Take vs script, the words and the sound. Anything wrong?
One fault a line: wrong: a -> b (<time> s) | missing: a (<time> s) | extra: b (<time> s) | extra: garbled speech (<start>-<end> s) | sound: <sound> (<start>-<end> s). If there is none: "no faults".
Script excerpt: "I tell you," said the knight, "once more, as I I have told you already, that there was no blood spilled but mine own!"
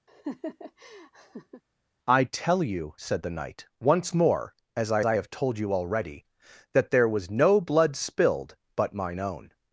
sound: laugh (0.1-1.6 s)